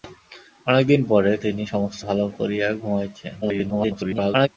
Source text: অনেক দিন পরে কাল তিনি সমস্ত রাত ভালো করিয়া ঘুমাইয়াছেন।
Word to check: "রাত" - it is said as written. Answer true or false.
false